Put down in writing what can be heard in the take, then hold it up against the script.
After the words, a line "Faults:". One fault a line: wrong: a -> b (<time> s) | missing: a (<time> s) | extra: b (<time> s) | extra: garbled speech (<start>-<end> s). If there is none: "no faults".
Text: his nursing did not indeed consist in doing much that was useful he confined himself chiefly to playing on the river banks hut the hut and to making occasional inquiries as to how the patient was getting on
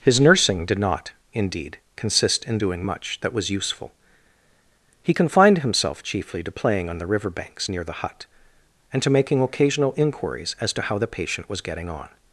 his nursing did not indeed consist in doing much that was useful he confined himself chiefly to playing on the river banks near the hut and to making occasional inquiries as to how the patient was getting on
Faults:
wrong: hut -> near (7.7 s)